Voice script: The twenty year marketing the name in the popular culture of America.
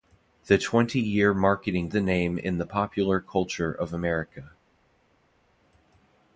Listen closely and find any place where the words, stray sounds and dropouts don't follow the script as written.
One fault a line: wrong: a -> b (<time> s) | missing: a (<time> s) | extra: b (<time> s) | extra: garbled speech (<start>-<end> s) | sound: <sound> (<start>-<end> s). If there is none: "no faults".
no faults